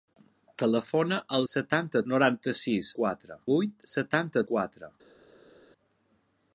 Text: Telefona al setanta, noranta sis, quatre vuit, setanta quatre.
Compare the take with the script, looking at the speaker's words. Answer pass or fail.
pass